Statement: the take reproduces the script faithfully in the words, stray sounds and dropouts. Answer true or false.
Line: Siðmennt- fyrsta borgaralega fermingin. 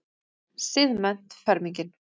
false